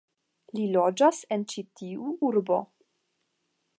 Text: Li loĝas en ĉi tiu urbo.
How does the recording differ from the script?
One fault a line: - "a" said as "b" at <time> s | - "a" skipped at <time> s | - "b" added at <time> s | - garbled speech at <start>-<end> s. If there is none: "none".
none